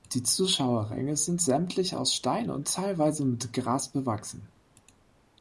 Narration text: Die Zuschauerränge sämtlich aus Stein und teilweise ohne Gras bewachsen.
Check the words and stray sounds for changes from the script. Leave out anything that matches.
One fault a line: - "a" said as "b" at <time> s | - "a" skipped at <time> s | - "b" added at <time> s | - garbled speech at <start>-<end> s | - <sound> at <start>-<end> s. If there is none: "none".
- "sind" added at 1.1 s
- "ohne" said as "mit" at 3.3 s